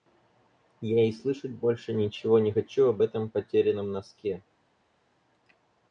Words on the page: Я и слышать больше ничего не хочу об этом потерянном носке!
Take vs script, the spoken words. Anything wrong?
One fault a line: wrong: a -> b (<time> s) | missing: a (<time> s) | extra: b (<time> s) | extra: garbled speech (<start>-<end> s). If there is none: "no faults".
no faults